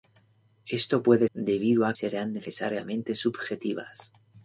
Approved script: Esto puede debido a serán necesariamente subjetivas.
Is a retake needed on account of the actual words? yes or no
no